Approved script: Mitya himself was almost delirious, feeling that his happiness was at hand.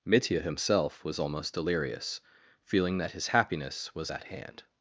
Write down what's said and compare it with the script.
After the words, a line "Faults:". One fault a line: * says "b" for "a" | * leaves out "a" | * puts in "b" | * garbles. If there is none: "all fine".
Mitya himself was almost delirious, feeling that his happiness was at hand.
Faults:
all fine